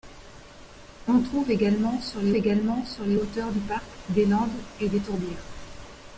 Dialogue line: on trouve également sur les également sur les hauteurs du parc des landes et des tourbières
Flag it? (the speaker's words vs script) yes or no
no